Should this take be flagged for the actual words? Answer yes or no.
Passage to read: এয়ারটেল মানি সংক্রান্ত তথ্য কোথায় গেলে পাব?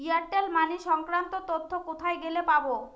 no